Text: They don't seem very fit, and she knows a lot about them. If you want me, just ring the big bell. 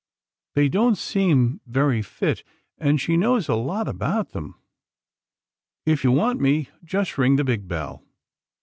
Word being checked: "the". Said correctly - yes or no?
yes